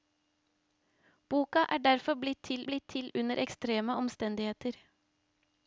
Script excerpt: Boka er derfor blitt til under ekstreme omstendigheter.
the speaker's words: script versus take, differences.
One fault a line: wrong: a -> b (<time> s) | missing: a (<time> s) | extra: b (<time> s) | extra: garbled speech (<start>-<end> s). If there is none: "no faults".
extra: blitt til (2.7 s)